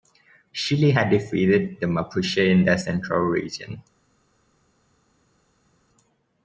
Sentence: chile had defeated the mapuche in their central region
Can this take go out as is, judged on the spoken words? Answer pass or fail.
pass